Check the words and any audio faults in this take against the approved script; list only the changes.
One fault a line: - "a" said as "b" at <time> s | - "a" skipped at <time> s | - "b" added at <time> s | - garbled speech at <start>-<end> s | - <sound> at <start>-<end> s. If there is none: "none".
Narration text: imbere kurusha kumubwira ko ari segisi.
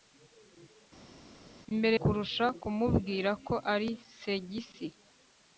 none